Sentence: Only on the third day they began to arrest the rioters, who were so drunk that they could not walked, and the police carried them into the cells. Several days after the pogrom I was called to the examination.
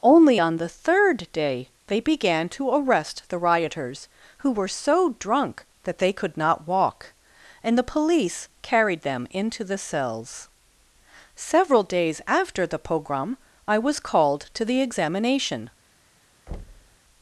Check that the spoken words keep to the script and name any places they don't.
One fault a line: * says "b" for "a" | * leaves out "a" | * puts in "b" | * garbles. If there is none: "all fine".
* says "walk" for "walked"